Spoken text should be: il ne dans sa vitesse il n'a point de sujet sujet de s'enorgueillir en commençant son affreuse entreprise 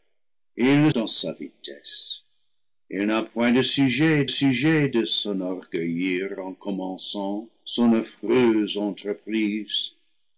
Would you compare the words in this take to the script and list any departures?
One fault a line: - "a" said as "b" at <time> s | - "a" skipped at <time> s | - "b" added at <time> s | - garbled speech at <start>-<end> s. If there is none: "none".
none